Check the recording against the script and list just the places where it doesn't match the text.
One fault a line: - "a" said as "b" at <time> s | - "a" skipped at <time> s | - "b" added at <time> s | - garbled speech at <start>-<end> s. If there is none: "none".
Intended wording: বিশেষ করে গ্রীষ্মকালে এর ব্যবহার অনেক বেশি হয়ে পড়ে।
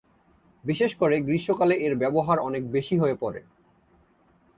none